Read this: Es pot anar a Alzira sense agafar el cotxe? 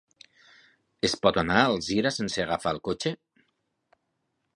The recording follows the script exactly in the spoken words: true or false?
true